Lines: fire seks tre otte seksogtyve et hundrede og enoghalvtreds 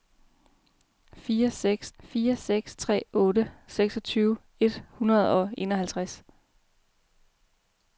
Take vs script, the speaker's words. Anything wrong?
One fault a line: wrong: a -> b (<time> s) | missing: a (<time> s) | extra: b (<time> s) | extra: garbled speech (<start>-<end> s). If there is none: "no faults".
extra: fire seks (2.0 s)